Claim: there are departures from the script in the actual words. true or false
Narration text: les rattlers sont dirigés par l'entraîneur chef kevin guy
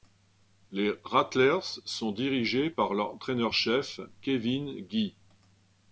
false